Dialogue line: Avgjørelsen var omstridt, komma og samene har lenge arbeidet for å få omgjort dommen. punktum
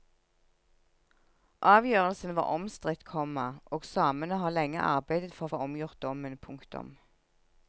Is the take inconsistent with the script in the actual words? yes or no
no